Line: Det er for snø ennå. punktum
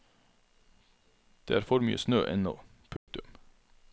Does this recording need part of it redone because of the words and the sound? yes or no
yes